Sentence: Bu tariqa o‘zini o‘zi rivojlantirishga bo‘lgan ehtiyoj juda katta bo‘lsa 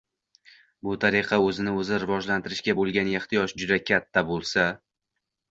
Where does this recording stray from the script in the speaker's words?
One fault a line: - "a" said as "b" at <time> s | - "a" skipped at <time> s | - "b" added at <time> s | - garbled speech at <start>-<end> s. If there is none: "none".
none